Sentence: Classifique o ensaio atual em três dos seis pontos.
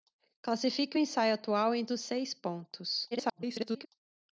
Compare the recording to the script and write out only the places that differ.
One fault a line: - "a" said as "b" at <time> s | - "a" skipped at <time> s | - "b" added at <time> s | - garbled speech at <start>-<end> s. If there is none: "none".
- "três" skipped at 1.8 s
- garbled speech at 3.1-3.9 s